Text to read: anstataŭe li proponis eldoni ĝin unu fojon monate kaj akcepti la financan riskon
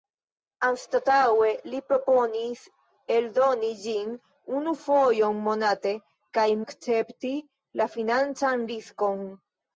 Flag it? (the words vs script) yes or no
no